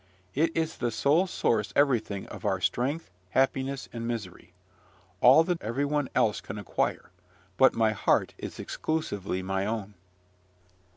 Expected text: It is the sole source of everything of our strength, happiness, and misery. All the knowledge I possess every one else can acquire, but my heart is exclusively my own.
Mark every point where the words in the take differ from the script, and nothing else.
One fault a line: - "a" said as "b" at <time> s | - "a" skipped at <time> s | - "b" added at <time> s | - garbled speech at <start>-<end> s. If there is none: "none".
- "of" skipped at 1.7 s
- "knowledge I possess" skipped at 5.5 s